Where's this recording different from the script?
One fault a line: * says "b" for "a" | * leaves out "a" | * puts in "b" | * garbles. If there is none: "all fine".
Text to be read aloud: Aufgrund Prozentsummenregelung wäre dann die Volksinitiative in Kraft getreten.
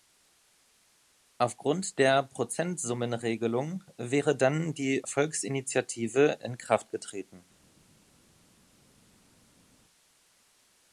* puts in "der"